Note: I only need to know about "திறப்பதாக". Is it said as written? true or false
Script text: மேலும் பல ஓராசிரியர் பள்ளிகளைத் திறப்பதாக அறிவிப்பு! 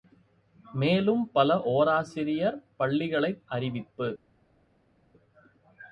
false